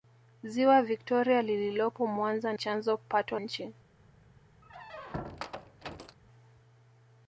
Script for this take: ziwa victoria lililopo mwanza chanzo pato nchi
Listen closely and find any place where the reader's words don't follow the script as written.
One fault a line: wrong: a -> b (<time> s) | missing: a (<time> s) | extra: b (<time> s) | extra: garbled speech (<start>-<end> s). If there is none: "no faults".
no faults